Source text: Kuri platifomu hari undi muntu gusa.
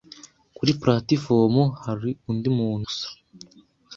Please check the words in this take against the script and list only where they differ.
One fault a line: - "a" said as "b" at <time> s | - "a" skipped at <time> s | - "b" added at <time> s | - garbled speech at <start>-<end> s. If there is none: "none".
none